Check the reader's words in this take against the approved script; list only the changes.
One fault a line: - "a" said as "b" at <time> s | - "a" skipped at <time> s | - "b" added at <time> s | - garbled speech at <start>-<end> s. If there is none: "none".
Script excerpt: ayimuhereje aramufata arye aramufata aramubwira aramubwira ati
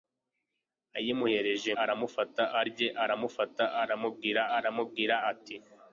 none